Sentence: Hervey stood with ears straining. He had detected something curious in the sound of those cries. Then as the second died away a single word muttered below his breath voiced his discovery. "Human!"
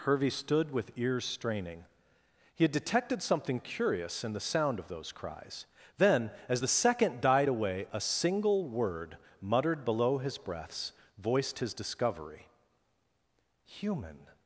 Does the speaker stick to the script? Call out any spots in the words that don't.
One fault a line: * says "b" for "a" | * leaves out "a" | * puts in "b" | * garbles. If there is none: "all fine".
* says "breaths" for "breath"